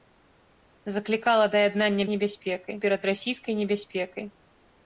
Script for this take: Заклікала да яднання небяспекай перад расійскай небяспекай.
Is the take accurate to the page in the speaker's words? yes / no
yes